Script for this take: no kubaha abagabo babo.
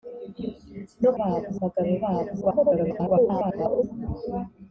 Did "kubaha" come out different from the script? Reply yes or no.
yes